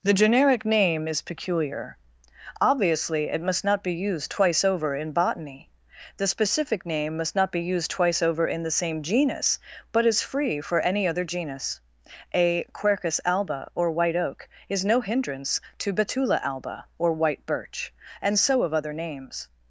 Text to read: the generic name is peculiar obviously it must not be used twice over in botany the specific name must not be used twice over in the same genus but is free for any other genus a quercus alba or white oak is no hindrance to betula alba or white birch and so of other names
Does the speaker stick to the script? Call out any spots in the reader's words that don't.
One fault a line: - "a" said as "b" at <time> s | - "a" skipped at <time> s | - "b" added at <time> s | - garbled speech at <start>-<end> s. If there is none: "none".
none